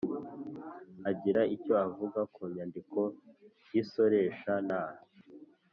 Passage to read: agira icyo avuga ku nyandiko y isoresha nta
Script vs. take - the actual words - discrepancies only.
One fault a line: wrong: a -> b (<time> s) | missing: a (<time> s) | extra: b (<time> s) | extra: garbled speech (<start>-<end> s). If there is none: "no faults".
no faults